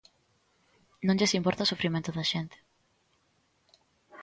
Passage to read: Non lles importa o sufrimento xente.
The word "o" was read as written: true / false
true